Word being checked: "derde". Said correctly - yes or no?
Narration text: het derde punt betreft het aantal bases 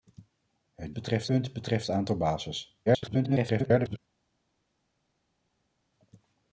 no